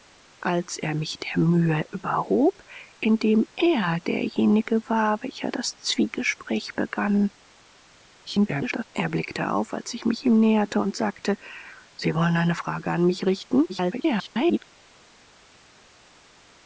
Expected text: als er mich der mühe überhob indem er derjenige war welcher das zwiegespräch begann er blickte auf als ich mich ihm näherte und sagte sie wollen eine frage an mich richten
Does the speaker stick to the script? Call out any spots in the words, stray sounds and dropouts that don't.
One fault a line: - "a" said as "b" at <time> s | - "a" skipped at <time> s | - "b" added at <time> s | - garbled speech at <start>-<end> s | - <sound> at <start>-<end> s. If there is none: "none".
- garbled speech at 8.3-8.8 s
- garbled speech at 13.7-14.6 s